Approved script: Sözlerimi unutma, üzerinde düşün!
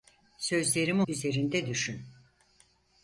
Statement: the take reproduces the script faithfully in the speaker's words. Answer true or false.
false